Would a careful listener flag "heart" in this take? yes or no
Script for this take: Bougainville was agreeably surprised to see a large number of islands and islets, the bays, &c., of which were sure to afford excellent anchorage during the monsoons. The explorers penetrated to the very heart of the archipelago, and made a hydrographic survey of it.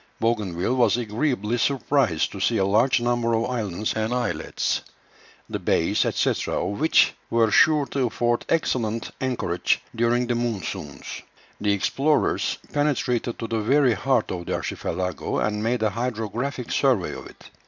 no